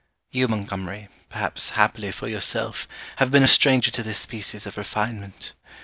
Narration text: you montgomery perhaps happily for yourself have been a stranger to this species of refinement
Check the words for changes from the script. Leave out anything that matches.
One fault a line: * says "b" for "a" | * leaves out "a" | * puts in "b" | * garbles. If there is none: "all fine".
all fine